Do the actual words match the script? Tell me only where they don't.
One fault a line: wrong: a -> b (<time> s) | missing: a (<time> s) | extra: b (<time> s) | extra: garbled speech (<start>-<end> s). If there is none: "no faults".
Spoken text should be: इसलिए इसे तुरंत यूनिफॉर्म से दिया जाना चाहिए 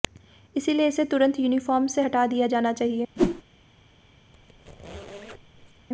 extra: हटा (2.0 s)